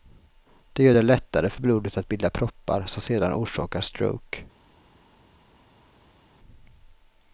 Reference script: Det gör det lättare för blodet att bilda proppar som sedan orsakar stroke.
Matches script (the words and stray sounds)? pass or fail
pass